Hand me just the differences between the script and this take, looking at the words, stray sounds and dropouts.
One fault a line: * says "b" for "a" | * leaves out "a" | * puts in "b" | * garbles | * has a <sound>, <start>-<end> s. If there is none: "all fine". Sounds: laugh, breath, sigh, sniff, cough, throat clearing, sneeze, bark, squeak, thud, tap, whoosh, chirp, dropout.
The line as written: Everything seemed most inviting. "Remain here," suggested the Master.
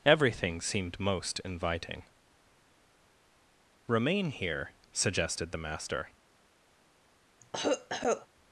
* has a cough, 7.4-8.3 s